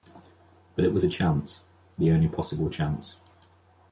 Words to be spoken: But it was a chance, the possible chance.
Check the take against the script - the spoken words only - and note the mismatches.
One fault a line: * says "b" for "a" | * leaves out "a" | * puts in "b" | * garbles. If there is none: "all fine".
* puts in "only"